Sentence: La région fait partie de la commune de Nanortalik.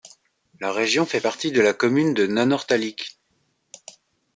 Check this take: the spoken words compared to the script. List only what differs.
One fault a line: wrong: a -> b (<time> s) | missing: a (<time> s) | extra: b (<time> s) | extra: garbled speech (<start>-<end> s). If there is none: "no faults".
no faults